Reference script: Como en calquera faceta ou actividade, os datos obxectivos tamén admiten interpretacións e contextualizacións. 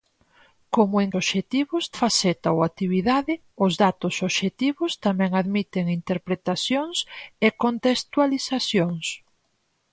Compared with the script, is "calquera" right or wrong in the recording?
wrong